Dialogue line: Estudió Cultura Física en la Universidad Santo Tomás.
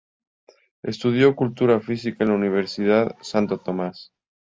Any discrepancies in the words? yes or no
no